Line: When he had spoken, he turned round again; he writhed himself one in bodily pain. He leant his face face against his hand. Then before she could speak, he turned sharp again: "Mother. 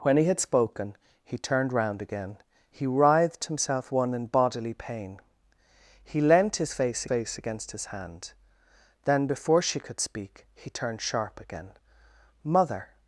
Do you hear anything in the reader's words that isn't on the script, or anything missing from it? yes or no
no